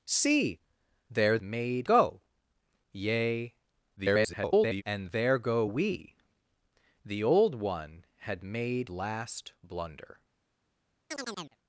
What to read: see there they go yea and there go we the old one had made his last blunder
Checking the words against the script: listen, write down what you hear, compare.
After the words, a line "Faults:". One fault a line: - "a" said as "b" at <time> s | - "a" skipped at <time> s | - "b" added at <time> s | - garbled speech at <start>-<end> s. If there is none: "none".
see there made go yea [garbled] and there go we the old one had made last blunder
Faults:
- "they" said as "made" at 1.4 s
- garbled speech at 4.0-4.8 s
- "his" skipped at 8.9 s